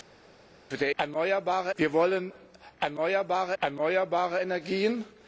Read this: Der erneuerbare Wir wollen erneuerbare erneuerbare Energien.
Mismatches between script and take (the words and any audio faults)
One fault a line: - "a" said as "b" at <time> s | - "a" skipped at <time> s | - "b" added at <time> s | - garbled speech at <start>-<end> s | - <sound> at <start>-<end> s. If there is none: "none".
none